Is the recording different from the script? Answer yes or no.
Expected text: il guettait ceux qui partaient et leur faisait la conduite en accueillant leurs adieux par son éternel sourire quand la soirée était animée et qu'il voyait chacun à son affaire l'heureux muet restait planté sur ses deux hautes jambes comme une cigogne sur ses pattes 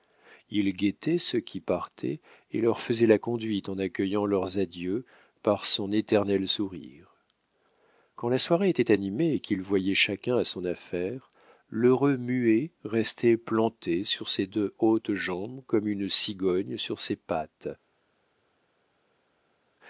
no